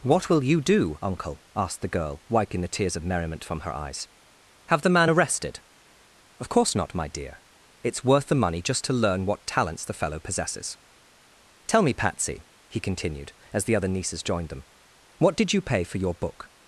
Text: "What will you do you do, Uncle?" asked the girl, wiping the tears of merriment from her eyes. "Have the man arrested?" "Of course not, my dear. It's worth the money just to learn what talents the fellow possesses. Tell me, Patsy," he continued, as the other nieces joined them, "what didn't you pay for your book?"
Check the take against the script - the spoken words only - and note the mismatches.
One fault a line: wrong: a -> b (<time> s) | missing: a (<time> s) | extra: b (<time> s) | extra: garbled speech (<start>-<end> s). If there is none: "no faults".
missing: you do (1.0 s)
wrong: didn't -> did (15.3 s)